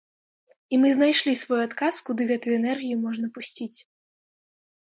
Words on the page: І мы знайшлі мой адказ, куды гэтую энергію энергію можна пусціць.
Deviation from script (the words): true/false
true